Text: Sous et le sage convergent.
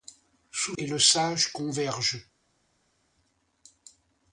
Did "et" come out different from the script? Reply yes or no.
no